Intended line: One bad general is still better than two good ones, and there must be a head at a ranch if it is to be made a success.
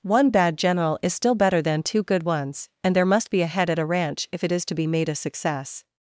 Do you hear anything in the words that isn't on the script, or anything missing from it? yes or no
no